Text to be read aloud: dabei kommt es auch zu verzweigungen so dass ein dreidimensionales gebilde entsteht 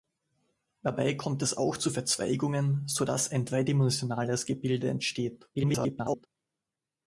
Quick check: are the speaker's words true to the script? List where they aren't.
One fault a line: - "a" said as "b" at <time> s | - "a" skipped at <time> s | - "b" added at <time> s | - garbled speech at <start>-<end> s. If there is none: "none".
- garbled speech at 5.5-6.3 s